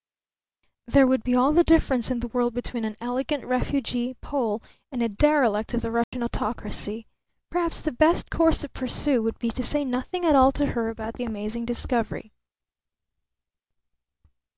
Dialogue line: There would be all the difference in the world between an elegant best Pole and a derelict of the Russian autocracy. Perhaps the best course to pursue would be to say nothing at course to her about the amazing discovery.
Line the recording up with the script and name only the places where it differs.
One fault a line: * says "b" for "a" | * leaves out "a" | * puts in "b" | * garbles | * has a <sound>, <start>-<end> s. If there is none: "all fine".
* says "refugee" for "best"
* has a dropout, 6.0-6.1 s
* says "all" for "course"